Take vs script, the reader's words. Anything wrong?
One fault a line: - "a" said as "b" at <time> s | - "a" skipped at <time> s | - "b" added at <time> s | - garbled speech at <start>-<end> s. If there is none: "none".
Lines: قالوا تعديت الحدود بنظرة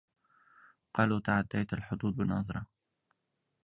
none